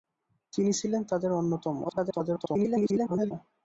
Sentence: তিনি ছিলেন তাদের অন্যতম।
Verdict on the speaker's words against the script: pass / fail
fail